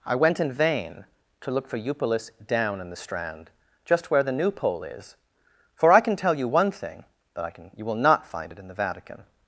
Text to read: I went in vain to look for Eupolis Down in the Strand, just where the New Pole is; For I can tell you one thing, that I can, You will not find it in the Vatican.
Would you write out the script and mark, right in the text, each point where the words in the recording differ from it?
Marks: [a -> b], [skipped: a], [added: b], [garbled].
I went in vain to look for Eupolis Down in the Strand, just where the New Pole is; For I can tell you one thing, that I can, You will not find it in the Vatican.